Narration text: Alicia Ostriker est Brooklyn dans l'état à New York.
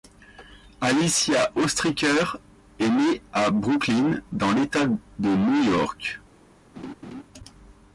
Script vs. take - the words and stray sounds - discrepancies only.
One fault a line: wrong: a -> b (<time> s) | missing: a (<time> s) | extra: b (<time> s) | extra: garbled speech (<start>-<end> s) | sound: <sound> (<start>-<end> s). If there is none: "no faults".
extra: née à (2.9 s)
wrong: à -> de (4.9 s)
sound: laugh (6.8-7.2 s)